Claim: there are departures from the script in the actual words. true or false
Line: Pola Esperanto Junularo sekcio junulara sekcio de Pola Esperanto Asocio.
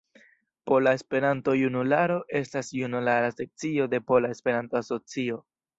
true